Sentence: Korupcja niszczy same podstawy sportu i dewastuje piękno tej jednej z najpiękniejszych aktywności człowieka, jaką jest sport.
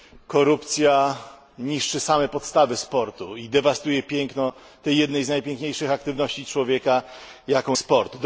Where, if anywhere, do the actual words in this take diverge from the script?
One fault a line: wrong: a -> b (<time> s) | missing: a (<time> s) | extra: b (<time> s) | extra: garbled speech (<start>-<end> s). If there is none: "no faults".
missing: jest (7.8 s)